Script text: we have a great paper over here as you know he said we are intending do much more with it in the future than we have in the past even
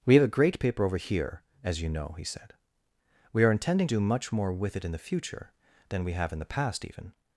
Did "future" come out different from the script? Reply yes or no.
no